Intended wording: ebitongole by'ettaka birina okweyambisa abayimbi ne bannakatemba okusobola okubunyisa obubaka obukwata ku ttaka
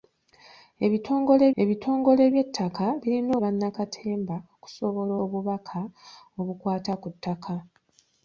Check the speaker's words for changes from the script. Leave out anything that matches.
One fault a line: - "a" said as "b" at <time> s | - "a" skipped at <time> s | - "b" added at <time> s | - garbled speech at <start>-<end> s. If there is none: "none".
- "ebitongole" added at 1.6 s
- "okweyambisa abayimbi ne" skipped at 3.3 s
- "okubunyisa" skipped at 5.1 s